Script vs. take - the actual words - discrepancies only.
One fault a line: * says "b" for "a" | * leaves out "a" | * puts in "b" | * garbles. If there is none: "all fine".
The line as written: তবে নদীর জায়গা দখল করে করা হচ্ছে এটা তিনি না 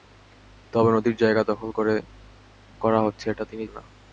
all fine